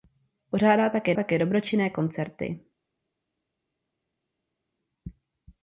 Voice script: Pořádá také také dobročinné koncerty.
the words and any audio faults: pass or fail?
pass